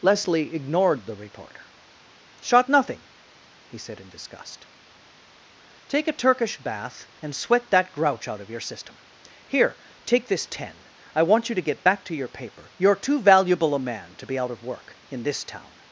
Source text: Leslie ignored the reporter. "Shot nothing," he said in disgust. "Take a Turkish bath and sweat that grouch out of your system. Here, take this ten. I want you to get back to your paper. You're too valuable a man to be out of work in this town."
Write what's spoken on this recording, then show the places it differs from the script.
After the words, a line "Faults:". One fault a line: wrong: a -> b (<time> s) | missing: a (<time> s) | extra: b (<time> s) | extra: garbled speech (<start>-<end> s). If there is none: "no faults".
Leslie ignored the reporter. "Shot nothing," he said in disgust. "Take a Turkish bath and sweat that grouch out of your system. Here, take this ten. I want you to get back to your paper. You're too valuable a man to be out of work in this town."
Faults:
no faults